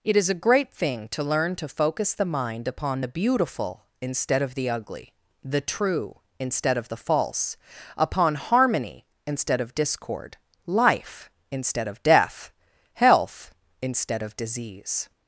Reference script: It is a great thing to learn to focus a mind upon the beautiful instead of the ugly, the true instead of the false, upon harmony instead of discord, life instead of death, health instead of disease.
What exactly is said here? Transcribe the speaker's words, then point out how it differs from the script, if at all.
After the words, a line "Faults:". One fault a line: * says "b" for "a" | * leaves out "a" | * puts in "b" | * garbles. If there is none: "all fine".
It is a great thing to learn to focus the mind upon the beautiful instead of the ugly, the true instead of the false, upon harmony instead of discord, life instead of death, health instead of disease.
Faults:
* says "the" for "a"